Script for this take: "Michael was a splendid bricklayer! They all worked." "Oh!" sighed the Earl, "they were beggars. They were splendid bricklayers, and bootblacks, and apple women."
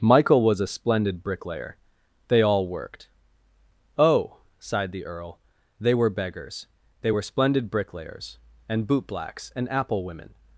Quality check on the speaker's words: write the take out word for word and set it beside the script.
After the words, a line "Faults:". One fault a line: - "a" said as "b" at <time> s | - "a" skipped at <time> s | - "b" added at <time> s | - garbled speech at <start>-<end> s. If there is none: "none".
"Michael was a splendid bricklayer! They all worked." "Oh!" sighed the Earl, "they were beggars. They were splendid bricklayers, and bootblacks, and apple women."
Faults:
none